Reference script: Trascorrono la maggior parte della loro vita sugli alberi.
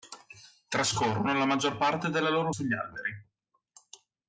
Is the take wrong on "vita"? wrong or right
wrong